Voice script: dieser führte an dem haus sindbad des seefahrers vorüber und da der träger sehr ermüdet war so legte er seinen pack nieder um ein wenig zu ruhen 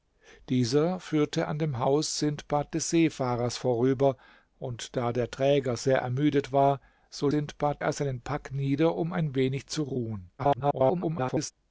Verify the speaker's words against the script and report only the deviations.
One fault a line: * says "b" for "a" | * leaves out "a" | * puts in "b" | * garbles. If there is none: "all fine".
* says "sindbad" for "legte"
* garbles